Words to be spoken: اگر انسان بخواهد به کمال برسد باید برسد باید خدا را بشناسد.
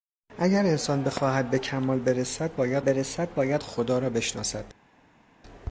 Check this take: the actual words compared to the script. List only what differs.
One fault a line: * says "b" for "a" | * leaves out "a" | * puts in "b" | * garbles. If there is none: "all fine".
all fine